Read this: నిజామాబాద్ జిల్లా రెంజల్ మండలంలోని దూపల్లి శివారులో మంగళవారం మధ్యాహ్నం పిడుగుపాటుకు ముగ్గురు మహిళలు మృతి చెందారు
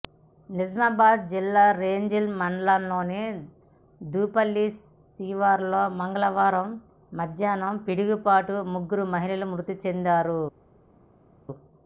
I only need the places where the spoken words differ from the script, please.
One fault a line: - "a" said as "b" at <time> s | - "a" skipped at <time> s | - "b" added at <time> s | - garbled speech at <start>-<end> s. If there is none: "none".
none